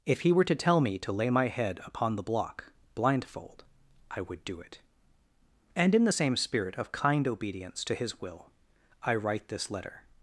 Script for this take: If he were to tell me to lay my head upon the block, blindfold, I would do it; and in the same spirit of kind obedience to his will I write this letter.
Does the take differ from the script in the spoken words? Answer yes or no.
no